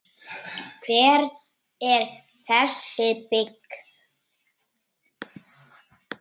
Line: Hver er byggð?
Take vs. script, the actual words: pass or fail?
fail